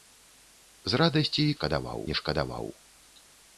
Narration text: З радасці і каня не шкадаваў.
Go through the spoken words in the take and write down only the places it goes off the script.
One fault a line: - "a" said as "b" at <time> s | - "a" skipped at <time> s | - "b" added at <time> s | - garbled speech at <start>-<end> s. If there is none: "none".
- "каня" said as "шкадаваў" at 1.6 s